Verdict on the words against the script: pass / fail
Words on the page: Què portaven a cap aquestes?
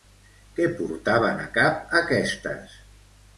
pass